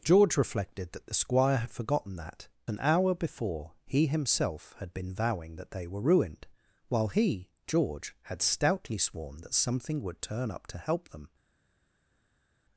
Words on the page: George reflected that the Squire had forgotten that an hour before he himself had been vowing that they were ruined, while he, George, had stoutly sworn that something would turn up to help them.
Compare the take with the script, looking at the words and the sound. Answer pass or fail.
pass